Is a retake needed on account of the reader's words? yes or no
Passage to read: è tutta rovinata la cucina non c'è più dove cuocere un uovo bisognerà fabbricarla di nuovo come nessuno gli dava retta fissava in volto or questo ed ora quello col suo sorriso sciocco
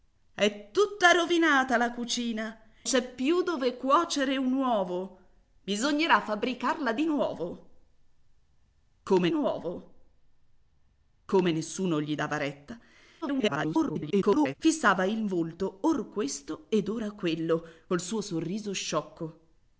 yes